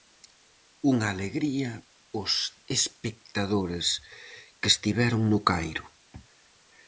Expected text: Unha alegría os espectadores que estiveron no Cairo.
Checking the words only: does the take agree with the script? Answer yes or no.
yes